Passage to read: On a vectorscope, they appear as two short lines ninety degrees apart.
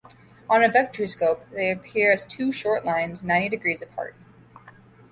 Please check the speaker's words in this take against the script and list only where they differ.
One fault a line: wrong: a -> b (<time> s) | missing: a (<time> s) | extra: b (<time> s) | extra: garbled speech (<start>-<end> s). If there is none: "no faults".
no faults